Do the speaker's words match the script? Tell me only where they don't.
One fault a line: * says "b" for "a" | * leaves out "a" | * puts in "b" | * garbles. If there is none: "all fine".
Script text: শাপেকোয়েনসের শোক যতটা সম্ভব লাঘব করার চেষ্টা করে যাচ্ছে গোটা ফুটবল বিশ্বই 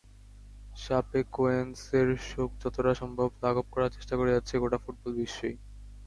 all fine